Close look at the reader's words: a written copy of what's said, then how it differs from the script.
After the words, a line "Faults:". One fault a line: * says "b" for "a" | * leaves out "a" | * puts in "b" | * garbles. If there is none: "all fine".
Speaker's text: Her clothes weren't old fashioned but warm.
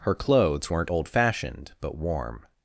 Her clothes weren't old fashioned but warm.
Faults:
all fine